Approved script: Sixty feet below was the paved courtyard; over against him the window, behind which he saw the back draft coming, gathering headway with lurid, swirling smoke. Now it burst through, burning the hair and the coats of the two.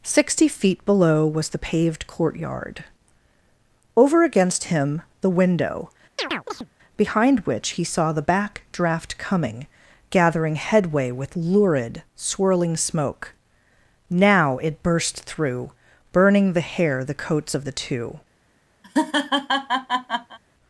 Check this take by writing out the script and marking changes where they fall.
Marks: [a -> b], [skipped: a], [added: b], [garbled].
Sixty feet below was the paved courtyard; over against him the window, behind which he saw the back draft coming, gathering headway with lurid, swirling smoke. Now it burst through, burning the hair [skipped: and] the coats of the two.